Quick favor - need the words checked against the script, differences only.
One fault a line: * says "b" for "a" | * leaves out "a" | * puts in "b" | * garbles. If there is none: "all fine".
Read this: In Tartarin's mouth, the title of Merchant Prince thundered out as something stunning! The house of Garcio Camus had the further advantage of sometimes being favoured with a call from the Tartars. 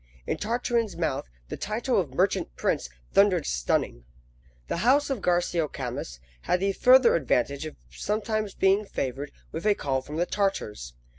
* leaves out "out as something"